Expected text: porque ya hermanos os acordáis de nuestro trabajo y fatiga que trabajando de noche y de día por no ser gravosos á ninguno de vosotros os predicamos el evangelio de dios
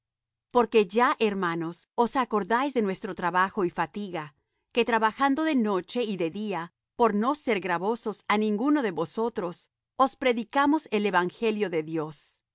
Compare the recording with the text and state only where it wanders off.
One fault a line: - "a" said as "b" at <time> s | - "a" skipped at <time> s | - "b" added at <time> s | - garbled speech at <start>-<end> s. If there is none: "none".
none